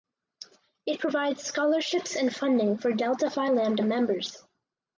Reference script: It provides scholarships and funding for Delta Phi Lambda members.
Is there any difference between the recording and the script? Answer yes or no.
no